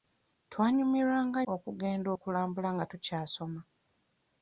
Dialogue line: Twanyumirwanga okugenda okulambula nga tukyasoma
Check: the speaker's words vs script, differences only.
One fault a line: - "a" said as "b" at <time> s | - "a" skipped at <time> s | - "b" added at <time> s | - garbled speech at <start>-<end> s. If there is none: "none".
none